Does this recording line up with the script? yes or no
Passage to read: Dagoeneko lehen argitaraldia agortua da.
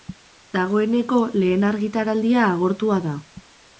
yes